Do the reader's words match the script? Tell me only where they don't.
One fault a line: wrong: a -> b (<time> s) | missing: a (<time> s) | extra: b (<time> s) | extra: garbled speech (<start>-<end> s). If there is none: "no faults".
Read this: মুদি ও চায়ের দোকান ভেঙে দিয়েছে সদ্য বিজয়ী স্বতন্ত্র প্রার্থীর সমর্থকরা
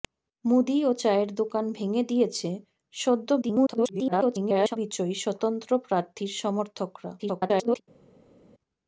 extra: garbled speech (3.4-4.8 s)
extra: garbled speech (7.2-7.8 s)